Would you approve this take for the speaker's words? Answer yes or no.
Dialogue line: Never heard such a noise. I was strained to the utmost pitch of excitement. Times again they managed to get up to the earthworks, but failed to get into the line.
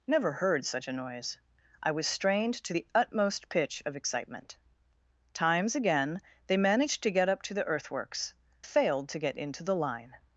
no